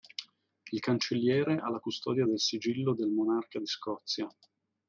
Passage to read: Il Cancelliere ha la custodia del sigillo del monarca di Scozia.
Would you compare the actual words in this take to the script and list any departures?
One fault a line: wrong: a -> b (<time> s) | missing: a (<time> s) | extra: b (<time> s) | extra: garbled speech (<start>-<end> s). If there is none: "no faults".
no faults